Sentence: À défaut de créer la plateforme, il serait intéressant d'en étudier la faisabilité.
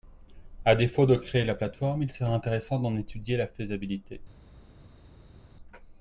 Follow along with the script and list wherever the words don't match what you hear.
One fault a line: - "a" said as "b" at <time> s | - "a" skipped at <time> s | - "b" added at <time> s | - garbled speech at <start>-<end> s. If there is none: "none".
none